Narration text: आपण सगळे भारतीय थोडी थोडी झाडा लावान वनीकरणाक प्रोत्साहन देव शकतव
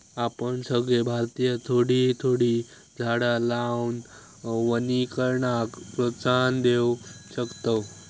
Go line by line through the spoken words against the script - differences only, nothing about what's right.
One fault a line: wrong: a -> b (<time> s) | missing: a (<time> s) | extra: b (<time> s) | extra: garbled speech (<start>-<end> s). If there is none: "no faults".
no faults